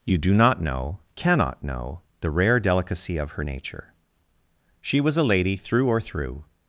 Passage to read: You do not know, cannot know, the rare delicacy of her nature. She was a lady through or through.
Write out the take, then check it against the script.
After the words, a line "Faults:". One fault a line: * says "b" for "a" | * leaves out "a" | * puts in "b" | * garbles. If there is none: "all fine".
You do not know, cannot know, the rare delicacy of her nature. She was a lady through or through.
Faults:
all fine